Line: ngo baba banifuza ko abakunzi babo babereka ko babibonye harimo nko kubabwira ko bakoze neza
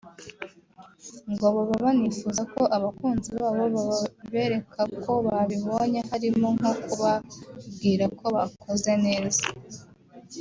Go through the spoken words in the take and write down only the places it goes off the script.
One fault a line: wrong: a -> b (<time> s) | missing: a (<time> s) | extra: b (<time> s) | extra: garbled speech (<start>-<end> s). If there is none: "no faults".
no faults